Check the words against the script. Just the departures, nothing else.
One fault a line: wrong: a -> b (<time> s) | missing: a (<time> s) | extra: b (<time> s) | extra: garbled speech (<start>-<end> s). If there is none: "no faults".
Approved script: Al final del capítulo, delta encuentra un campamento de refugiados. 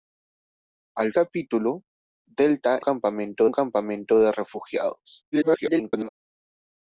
missing: final del (1.1 s)
wrong: encuentra -> campamento (2.8 s)
extra: garbled speech (5.3-6.1 s)